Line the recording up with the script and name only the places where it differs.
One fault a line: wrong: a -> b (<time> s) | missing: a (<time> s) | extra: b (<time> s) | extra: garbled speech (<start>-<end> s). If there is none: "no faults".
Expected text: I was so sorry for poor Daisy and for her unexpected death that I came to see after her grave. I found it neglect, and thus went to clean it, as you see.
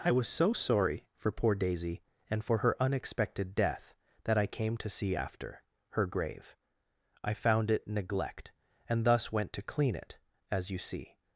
no faults